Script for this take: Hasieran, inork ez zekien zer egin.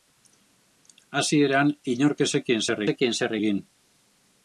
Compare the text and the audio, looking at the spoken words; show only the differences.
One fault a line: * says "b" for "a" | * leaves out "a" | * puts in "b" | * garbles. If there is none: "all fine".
* puts in "zekien zer"